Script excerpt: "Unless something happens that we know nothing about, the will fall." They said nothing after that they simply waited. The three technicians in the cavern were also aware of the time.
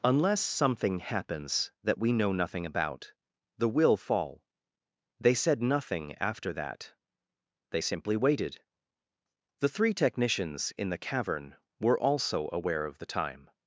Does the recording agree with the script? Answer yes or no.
yes